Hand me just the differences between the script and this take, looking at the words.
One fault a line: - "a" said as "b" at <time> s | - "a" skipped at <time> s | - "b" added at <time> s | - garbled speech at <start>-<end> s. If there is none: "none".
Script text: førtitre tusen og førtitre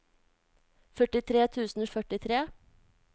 none